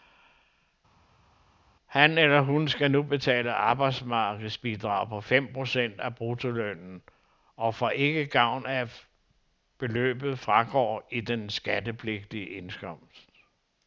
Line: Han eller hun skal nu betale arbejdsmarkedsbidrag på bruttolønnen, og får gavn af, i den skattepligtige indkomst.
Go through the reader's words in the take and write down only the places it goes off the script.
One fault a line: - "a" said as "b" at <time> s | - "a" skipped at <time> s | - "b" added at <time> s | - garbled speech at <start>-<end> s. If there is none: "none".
- "fem procent af" added at 5.2 s
- "ikke" added at 7.9 s
- "at beløbet fragår" added at 8.8 s